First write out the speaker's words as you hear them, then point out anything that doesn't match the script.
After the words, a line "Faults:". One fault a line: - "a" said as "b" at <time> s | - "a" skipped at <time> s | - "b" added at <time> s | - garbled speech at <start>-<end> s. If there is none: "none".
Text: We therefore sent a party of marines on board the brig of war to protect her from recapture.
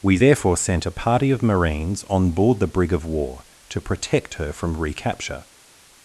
We therefore sent a party of marines on board the brig of war to protect her from recapture.
Faults:
none